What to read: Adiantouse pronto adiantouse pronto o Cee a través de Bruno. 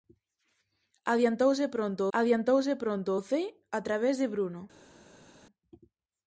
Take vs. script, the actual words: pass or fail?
pass